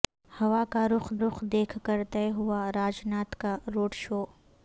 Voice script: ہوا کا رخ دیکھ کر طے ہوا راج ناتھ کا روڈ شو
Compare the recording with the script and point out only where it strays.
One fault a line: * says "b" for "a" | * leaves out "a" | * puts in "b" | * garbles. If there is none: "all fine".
* puts in "رخ"